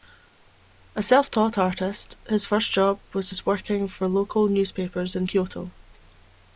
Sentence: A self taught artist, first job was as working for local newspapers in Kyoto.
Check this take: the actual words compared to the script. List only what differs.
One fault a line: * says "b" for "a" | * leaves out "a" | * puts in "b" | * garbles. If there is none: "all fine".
* puts in "his"